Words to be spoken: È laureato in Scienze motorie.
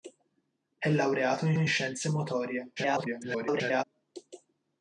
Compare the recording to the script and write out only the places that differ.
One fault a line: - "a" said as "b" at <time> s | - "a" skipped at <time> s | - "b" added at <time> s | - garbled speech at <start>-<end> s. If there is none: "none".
- "in" added at 1.6 s
- garbled speech at 2.8-3.8 s